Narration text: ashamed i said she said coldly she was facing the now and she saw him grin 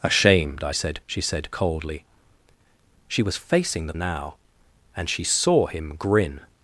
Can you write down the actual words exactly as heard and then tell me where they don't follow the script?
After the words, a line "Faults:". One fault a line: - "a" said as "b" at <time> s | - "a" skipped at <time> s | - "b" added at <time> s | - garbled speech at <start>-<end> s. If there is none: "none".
ashamed i said she said coldly she was facing the now and she saw him grin
Faults:
none